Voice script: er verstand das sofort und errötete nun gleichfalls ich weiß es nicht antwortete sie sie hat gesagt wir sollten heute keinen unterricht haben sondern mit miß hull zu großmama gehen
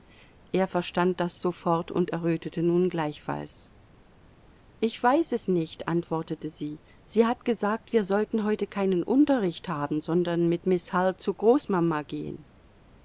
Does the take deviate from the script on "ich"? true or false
false